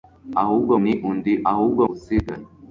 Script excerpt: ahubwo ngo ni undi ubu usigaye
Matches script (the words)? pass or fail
fail